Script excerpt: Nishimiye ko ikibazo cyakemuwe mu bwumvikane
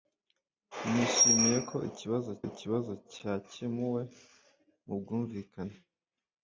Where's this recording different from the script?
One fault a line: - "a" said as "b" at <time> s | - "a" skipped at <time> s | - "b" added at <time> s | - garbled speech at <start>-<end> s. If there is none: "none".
- "ikibazo" added at 2.5 s